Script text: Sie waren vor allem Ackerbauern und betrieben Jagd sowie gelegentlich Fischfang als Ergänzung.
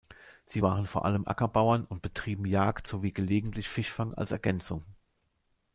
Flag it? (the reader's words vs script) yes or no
no